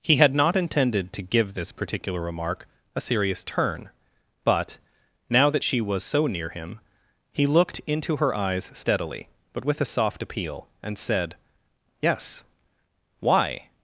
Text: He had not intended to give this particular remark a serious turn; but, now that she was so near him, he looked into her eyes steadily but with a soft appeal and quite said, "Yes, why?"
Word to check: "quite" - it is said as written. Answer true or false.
false